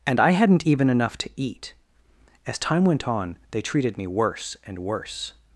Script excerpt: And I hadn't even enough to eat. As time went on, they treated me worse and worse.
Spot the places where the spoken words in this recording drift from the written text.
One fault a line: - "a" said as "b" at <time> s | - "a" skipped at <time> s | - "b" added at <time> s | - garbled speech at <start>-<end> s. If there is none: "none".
none